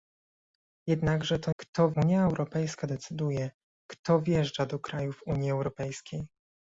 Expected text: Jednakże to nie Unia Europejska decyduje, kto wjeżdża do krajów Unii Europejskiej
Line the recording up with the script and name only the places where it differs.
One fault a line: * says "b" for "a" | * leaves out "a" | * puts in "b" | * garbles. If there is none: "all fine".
* says "kto" for "nie"